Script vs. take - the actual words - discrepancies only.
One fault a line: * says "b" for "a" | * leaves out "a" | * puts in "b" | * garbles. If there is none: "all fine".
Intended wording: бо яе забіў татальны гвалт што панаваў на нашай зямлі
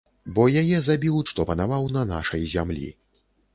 * leaves out "татальны гвалт"